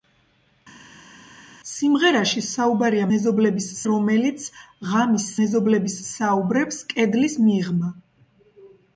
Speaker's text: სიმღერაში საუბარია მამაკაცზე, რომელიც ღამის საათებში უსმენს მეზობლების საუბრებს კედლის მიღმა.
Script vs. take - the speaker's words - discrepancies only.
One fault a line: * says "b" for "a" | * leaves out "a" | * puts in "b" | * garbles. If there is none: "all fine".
* says "მეზობლების" for "მამაკაცზე"
* leaves out "საათებში უსმენს"